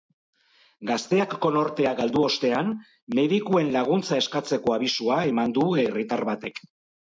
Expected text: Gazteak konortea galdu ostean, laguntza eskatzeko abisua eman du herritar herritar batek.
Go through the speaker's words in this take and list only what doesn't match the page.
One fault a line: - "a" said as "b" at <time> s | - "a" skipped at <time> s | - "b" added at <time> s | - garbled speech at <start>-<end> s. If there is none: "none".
- "medikuen" added at 3.2 s
- "herritar" skipped at 6.3 s